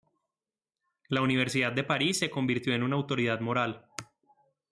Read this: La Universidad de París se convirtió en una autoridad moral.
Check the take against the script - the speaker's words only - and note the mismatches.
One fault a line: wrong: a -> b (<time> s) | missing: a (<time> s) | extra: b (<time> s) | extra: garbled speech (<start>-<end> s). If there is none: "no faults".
no faults